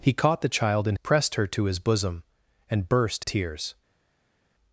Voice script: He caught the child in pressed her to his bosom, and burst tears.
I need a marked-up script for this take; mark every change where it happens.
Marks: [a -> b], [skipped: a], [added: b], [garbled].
He caught the child in pressed her to his bosom, and burst tears.